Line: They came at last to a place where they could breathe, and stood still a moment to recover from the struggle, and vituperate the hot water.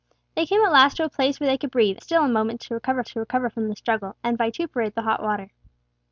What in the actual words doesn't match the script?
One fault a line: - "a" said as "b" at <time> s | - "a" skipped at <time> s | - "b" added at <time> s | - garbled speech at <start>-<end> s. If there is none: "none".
- "and stood" skipped at 2.0 s
- "to recover" added at 3.0 s